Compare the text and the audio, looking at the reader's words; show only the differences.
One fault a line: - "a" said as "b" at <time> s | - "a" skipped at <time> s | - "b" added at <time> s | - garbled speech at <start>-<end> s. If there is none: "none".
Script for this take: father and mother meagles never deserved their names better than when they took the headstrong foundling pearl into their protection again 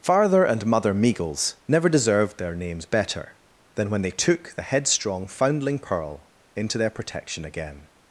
none